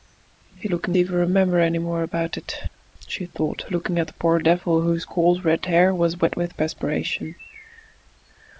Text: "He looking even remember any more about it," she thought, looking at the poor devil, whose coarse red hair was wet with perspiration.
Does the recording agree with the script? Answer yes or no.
yes